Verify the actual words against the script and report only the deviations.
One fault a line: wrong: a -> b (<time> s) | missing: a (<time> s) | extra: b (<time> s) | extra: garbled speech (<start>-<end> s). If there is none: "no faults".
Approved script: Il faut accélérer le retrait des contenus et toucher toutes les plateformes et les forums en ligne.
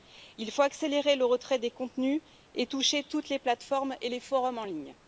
no faults